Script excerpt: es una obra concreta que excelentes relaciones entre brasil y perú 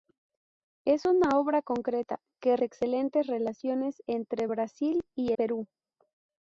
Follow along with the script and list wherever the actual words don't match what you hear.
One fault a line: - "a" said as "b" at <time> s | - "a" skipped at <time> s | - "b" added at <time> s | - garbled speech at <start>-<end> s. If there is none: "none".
none